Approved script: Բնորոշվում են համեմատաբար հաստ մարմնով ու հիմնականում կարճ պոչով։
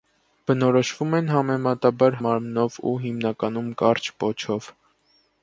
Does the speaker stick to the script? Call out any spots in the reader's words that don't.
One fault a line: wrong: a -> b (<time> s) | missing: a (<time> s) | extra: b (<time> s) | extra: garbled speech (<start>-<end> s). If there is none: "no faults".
missing: հաստ (2.2 s)